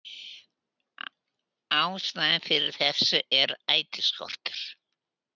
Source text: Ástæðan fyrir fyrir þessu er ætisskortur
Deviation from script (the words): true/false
true